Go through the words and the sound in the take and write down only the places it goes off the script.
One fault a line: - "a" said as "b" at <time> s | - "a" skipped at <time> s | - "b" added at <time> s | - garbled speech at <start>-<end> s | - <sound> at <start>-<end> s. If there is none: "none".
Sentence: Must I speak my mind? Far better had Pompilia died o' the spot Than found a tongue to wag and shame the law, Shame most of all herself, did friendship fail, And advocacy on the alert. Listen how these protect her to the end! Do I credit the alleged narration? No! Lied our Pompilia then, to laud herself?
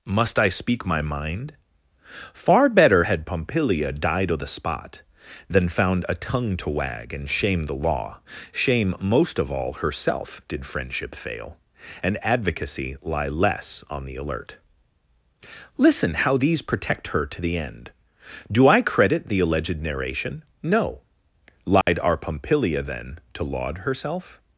- "lie less" added at 13.0 s
- dropout at 21.8-21.9 s